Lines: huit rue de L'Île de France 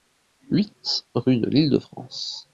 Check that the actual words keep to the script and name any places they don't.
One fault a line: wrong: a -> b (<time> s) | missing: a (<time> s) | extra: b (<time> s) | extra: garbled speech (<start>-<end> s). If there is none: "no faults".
no faults